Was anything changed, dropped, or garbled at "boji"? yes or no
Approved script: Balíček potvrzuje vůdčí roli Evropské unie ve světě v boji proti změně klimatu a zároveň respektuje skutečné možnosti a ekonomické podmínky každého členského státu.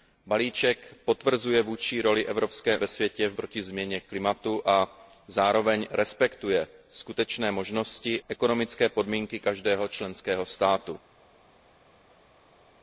yes